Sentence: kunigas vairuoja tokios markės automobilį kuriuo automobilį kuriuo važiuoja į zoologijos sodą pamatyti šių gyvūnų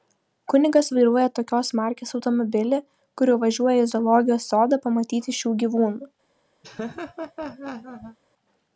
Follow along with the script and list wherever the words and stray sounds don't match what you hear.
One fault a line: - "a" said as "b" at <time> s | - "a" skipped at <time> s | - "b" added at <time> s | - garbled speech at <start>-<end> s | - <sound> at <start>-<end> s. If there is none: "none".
- "automobilį kuriuo" skipped at 3.4 s
- laugh at 6.6-8.2 s